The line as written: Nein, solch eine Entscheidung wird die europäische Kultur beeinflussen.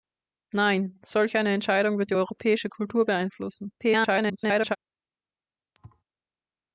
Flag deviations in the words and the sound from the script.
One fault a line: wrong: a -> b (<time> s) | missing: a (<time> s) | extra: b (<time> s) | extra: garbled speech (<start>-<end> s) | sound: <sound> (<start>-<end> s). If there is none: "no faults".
extra: garbled speech (3.8-4.8 s)
sound: thud (5.7-6.0 s)